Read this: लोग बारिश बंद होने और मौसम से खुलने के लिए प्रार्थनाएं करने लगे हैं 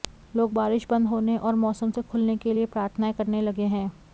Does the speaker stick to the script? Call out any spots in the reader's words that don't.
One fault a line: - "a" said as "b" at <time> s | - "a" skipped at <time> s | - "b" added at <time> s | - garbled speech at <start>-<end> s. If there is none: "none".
none